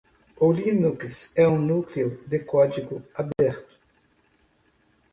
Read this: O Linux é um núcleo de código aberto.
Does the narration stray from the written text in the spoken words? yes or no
no